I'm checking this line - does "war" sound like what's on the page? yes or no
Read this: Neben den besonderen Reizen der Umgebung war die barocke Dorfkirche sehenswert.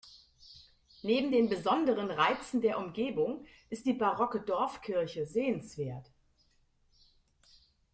no